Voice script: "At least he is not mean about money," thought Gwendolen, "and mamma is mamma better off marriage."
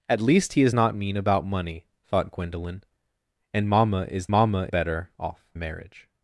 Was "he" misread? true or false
false